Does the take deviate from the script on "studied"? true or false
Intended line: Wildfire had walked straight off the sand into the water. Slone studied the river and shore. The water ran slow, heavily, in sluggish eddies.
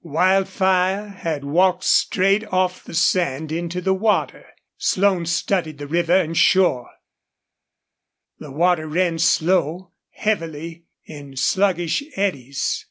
false